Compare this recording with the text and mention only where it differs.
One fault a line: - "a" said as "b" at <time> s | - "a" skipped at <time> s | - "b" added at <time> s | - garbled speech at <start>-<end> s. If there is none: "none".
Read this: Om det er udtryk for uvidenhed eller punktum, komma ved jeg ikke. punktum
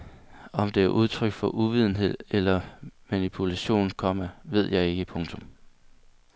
- "punktum" said as "manipulation" at 3.1 s